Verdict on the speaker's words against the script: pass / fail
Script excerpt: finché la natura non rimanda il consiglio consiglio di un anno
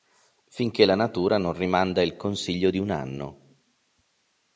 fail